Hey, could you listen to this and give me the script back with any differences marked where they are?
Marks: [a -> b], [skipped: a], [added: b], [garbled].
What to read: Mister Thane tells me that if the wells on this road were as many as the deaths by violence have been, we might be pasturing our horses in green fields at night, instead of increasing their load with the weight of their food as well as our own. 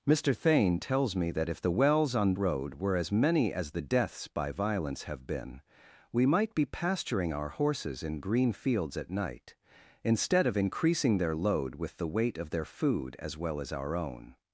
Mister Thane tells me that if the wells on [skipped: this] road were as many as the deaths by violence have been, we might be pasturing our horses in green fields at night, instead of increasing their load with the weight of their food as well as our own.